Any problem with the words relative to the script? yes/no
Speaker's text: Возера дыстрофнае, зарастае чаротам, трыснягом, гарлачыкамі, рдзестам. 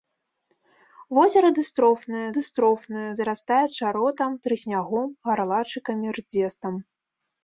yes